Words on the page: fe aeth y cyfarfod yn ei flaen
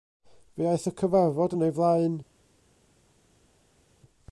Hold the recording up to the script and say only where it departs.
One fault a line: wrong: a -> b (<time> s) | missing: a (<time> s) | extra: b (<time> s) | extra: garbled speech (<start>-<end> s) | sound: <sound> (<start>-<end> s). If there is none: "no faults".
no faults